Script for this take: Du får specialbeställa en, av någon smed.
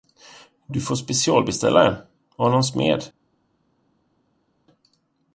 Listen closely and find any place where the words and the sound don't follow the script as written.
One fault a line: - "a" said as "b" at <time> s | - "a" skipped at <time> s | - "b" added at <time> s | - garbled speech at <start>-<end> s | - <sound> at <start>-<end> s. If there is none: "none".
none